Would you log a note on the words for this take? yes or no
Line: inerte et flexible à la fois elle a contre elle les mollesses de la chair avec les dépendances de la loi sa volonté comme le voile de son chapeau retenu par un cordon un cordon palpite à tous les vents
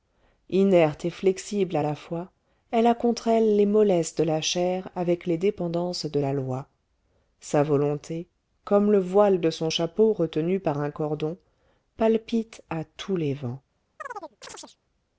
yes